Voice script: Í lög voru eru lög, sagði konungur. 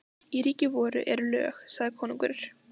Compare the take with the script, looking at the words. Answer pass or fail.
fail